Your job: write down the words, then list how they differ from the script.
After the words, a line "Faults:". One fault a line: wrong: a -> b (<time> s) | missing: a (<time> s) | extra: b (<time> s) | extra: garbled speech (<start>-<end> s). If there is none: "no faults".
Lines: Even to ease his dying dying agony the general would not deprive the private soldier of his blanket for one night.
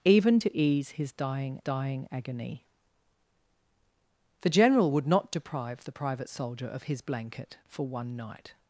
Even to ease his dying dying agony the general would not deprive the private soldier of his blanket for one night.
Faults:
no faults